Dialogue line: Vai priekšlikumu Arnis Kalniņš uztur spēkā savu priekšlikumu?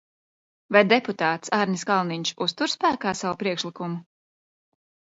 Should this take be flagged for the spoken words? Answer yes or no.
yes